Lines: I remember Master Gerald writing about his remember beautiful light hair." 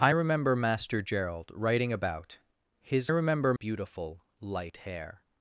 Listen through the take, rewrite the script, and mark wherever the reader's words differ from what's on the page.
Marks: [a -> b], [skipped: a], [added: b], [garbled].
I remember Master Gerald writing about his remember beautiful light hair."